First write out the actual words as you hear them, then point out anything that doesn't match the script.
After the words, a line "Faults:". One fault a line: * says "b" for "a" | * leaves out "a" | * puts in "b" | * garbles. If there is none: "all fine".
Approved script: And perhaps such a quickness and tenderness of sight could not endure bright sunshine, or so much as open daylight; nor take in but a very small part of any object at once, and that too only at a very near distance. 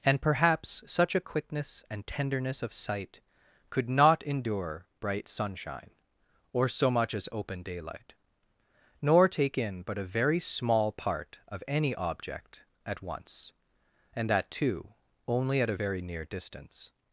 And perhaps such a quickness and tenderness of sight could not endure bright sunshine, or so much as open daylight; nor take in but a very small part of any object at once, and that too only at a very near distance.
Faults:
all fine